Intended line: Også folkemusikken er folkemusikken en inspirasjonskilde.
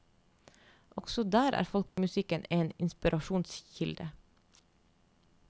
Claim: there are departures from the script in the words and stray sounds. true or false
true